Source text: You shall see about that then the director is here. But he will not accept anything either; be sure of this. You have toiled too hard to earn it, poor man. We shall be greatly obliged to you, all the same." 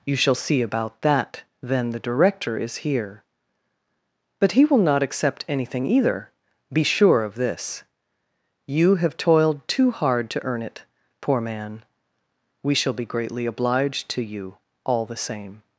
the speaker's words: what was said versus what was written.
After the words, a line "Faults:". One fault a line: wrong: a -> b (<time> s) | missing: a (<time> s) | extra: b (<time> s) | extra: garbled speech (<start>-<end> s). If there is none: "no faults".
You shall see about that then the director is here. But he will not accept anything either; be sure of this. You have toiled too hard to earn it, poor man. We shall be greatly obliged to you, all the same."
Faults:
no faults